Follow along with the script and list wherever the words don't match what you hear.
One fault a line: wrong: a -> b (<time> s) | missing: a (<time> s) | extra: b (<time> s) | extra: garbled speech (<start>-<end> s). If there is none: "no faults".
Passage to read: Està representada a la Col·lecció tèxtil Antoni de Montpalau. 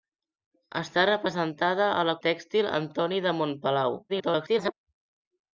missing: Col·lecció (2.2 s)
extra: garbled speech (4.1-4.7 s)